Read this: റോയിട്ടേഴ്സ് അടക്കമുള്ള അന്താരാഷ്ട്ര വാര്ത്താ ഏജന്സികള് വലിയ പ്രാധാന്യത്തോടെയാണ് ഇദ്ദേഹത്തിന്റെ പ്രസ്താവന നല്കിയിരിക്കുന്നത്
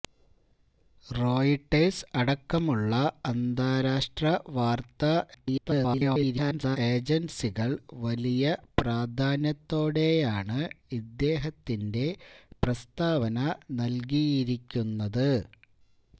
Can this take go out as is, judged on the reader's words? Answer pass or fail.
fail